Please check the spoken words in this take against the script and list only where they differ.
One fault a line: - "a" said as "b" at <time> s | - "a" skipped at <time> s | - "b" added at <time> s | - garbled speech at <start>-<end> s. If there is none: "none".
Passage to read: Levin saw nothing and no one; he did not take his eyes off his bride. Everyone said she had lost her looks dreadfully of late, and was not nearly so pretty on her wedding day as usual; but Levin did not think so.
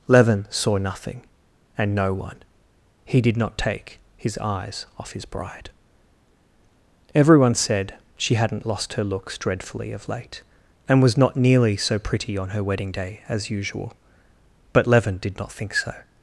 - "had" said as "hadn't" at 8.3 s